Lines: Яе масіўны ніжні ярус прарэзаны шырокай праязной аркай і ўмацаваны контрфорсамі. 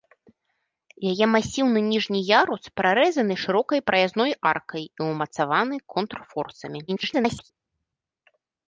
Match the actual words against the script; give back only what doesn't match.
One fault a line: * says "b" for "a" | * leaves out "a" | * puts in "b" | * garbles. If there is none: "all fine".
* garbles